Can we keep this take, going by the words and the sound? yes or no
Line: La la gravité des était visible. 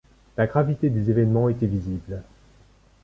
no